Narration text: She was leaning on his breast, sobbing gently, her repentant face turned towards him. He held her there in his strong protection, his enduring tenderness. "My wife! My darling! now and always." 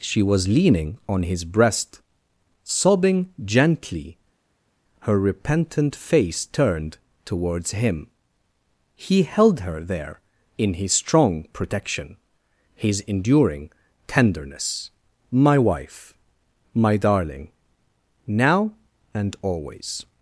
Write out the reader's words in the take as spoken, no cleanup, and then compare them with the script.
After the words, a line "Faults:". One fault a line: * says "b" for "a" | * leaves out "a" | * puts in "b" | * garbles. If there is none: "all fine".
She was leaning on his breast, sobbing gently, her repentant face turned towards him. He held her there in his strong protection, his enduring tenderness. "My wife! My darling! now and always."
Faults:
all fine